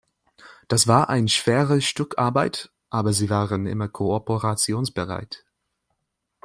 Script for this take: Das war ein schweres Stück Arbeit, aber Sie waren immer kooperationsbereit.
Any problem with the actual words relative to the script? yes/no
no